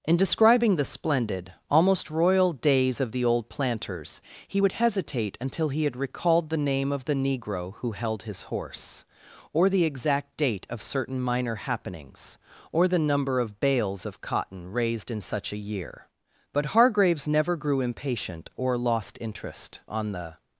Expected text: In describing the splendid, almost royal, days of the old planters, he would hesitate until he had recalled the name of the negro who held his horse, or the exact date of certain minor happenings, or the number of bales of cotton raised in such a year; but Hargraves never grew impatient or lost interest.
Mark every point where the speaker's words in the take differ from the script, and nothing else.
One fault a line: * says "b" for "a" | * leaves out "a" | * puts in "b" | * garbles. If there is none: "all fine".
* puts in "On the"